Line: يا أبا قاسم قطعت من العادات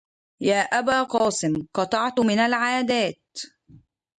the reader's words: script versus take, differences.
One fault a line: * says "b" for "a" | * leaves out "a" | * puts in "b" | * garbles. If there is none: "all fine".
all fine